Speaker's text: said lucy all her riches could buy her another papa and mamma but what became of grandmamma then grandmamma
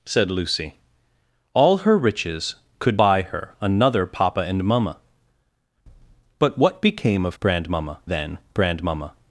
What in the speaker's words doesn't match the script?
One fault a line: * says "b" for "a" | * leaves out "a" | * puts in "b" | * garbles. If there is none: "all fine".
all fine